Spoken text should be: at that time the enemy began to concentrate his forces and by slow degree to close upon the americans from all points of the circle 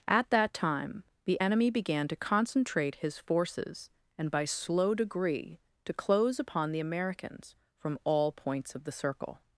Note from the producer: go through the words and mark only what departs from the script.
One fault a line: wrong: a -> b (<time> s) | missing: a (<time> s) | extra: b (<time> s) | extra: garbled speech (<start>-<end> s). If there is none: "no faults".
no faults